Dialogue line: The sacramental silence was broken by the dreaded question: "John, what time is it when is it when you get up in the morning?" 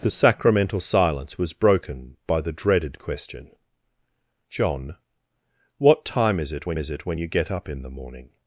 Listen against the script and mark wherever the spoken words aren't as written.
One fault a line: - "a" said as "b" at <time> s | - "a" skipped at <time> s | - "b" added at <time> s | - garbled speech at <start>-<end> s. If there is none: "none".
none